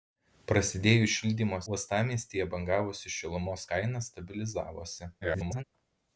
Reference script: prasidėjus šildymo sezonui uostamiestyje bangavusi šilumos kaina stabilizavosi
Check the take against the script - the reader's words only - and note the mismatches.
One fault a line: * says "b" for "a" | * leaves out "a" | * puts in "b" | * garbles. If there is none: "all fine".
* leaves out "sezonui"
* garbles